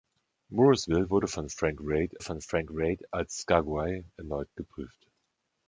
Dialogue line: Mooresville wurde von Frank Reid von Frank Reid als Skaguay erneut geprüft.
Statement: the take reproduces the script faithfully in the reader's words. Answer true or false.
true